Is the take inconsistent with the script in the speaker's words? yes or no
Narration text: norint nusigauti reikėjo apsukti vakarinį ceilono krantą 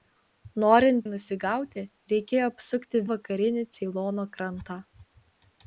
no